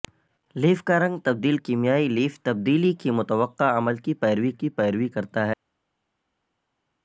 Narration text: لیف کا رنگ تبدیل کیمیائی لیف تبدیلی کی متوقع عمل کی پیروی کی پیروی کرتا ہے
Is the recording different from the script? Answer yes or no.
no